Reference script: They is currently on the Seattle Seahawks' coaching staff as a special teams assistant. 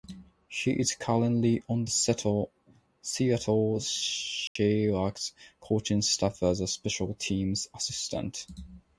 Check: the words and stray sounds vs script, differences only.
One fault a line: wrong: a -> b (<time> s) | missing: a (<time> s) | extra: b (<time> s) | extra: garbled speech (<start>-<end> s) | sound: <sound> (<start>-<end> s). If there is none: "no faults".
wrong: They -> He (0.5 s)
sound: dropout (4.5-4.6 s)